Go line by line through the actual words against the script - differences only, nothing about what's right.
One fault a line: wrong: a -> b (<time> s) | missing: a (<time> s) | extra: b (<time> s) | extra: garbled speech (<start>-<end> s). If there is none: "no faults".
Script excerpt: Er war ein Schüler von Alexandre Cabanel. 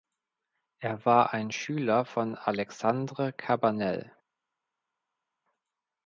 no faults